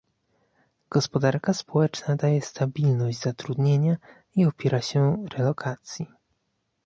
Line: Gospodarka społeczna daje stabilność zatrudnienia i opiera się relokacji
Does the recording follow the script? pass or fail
pass